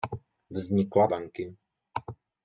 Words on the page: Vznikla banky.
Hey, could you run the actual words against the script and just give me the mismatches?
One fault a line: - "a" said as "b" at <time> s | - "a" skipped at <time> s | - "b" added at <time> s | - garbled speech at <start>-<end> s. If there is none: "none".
none